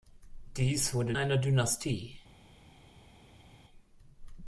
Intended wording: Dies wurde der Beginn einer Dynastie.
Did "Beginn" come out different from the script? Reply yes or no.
yes